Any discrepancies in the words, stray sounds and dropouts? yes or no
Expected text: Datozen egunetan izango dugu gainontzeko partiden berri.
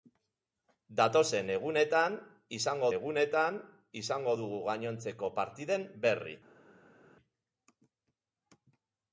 yes